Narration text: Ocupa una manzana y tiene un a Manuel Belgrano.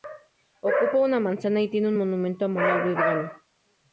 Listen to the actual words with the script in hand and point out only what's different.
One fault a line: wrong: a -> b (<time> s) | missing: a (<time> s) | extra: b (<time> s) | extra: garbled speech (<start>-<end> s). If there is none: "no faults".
extra: monumento (2.0 s)